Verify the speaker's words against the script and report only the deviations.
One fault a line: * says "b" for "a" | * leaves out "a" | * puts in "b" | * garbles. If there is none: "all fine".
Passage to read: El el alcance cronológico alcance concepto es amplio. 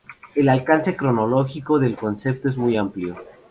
* leaves out "el"
* says "del" for "alcance"
* puts in "muy"